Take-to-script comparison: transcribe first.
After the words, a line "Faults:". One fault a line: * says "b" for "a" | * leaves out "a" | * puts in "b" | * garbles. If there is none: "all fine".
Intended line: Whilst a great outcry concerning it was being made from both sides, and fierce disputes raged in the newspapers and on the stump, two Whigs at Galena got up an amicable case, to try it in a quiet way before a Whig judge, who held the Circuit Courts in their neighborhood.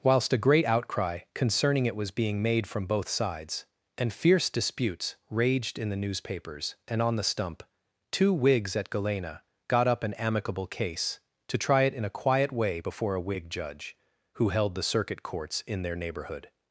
Whilst a great outcry concerning it was being made from both sides, and fierce disputes raged in the newspapers and on the stump, two Whigs at Galena got up an amicable case, to try it in a quiet way before a Whig judge, who held the Circuit Courts in their neighborhood.
Faults:
all fine